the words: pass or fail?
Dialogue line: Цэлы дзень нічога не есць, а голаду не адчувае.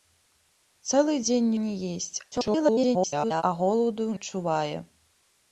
fail